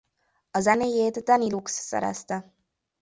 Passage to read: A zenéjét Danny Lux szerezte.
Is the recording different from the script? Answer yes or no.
no